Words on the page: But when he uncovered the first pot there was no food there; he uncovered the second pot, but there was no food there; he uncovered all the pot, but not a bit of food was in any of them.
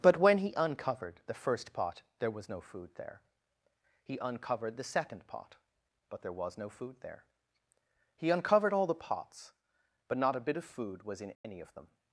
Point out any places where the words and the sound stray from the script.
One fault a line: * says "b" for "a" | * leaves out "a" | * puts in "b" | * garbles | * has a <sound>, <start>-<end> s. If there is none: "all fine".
* says "pots" for "pot"
* has a dropout, 11.3-11.4 s